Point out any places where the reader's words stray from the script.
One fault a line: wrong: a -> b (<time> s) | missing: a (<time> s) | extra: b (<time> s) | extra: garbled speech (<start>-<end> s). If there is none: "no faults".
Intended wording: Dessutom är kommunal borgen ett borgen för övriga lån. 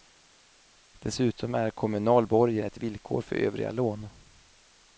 wrong: borgen -> villkor (2.8 s)